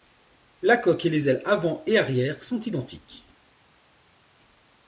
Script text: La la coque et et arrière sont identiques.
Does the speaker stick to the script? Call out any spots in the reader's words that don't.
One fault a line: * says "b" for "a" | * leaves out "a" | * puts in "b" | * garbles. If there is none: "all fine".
* leaves out "la"
* puts in "les ailes avant"